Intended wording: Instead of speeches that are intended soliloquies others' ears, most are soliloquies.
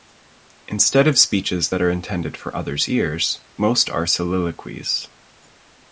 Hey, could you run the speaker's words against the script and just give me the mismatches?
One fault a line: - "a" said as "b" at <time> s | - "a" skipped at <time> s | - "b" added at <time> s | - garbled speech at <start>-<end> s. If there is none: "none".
- "soliloquies" said as "for" at 2.4 s